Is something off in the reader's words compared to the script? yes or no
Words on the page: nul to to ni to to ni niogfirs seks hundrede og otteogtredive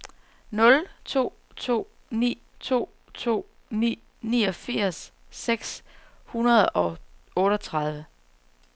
no